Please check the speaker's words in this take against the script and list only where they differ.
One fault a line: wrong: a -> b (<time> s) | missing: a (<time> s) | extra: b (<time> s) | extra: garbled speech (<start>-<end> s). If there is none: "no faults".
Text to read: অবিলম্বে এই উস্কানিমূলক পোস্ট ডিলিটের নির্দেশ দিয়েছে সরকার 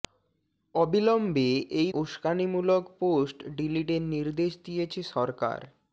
no faults